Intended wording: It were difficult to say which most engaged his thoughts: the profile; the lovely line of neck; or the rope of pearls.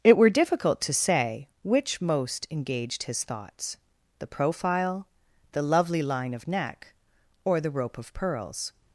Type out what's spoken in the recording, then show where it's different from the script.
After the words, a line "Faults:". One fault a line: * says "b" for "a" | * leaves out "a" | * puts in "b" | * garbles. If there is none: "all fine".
It were difficult to say which most engaged his thoughts: the profile; the lovely line of neck; or the rope of pearls.
Faults:
all fine